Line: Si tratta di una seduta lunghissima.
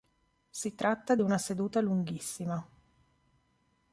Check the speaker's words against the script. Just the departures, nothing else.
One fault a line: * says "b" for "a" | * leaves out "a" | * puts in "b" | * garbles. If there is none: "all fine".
all fine